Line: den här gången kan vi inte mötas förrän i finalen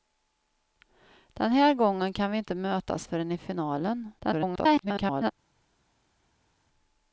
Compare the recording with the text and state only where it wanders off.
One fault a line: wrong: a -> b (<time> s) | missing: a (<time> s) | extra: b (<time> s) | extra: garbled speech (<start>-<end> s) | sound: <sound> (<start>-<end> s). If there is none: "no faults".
extra: garbled speech (4.2-5.3 s)